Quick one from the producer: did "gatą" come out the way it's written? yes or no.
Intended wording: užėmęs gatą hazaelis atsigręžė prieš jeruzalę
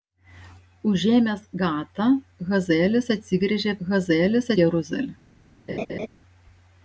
yes